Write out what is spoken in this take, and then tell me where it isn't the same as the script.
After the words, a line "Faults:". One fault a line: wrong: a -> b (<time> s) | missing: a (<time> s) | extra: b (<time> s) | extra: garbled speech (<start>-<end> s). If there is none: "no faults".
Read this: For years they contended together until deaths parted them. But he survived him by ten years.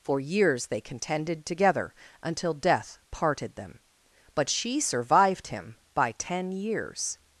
For years they contended together until death parted them. But she survived him by ten years.
Faults:
wrong: deaths -> death (2.5 s)
wrong: he -> she (4.5 s)